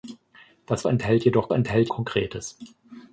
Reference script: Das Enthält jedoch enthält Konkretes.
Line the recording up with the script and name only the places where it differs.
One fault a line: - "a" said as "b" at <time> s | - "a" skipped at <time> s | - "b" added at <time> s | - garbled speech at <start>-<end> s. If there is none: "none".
none